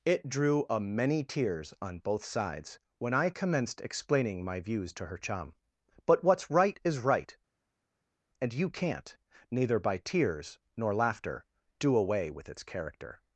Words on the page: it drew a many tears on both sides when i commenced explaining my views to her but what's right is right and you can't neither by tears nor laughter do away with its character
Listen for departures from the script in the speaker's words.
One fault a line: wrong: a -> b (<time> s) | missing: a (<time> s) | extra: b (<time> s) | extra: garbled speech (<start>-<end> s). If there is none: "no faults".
extra: chum (5.2 s)